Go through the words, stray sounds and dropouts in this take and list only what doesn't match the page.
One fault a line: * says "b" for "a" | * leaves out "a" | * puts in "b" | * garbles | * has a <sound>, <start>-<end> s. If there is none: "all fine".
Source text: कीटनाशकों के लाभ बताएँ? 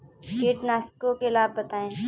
all fine